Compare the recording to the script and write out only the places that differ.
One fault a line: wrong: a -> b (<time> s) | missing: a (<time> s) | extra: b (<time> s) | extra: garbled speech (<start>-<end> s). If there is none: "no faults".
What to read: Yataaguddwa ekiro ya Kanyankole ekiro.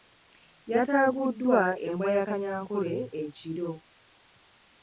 wrong: ekiro -> embwa (1.9 s)